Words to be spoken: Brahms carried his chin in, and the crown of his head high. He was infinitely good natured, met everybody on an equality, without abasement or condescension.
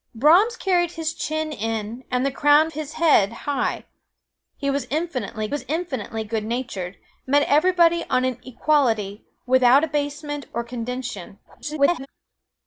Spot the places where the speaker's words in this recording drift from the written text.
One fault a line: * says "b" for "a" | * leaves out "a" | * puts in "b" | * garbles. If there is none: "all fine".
* leaves out "of"
* puts in "was infinitely"
* garbles